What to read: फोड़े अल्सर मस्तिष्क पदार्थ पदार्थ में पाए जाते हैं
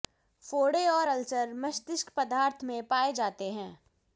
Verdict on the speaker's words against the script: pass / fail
fail